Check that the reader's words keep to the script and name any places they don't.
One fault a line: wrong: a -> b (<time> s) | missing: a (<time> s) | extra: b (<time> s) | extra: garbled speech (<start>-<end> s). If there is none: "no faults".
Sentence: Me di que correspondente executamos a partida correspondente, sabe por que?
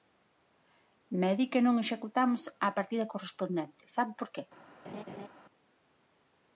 wrong: correspondente -> non (1.6 s)